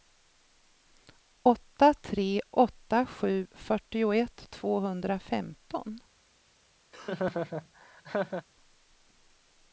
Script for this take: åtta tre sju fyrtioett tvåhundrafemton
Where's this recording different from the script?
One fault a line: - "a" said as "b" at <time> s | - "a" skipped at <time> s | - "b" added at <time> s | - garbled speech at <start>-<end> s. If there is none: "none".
- "åtta" added at 2.5 s